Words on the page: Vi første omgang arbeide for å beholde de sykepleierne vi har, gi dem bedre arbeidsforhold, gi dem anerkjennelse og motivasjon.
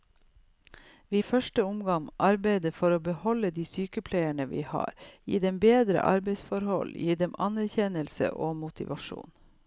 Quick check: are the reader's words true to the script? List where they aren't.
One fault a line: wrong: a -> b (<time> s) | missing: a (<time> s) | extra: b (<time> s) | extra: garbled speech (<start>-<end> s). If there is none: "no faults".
no faults